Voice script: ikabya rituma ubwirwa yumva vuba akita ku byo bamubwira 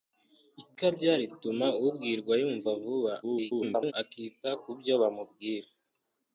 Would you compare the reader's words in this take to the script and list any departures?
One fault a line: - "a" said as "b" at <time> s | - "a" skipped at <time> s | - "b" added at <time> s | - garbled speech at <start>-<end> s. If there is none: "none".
- garbled speech at 3.2-3.9 s